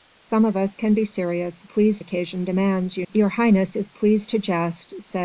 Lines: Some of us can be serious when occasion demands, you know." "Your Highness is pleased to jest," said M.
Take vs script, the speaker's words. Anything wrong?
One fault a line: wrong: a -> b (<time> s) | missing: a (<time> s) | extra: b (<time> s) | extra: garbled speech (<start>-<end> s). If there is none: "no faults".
wrong: when -> pleased (1.6 s)
missing: know (3.1 s)